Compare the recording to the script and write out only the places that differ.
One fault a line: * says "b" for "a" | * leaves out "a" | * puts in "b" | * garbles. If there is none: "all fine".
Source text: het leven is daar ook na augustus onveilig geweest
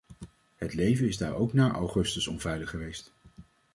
all fine